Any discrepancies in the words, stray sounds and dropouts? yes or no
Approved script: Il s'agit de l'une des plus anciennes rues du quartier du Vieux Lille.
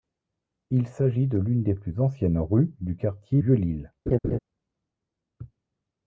yes